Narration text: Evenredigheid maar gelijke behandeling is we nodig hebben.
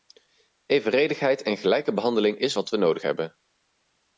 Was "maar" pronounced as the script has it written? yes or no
no